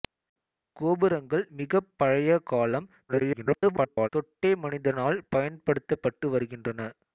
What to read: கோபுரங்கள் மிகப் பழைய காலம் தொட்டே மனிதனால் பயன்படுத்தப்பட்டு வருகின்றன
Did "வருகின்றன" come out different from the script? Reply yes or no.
no